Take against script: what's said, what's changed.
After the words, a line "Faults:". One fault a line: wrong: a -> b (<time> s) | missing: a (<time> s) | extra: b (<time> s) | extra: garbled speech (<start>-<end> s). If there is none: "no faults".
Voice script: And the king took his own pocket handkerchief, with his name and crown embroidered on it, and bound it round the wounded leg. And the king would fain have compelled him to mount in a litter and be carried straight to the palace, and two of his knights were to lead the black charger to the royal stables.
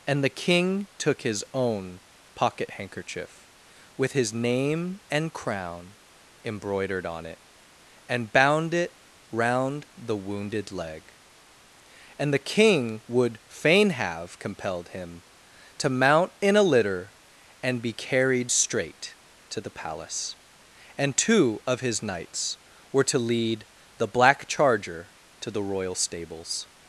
And the king took his own pocket handkerchief, with his name and crown embroidered on it, and bound it round the wounded leg. And the king would fain have compelled him to mount in a litter and be carried straight to the palace, and two of his knights were to lead the black charger to the royal stables.
Faults:
no faults